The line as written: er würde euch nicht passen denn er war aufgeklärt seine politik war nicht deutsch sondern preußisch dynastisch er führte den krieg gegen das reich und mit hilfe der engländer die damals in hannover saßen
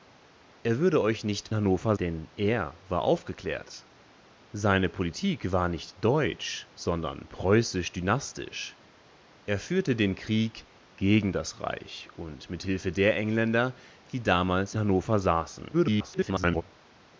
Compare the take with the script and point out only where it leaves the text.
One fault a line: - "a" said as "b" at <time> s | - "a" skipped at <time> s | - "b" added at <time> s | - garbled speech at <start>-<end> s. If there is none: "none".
- "passen" said as "hannover" at 1.5 s
- "in" skipped at 14.7 s
- garbled speech at 15.7-16.6 s